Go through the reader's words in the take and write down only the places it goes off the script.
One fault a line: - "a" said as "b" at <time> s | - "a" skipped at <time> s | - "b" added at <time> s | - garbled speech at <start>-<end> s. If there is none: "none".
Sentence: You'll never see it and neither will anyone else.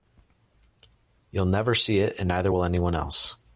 none